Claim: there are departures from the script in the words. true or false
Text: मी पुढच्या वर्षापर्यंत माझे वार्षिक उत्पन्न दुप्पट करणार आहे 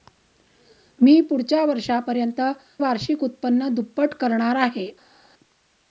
true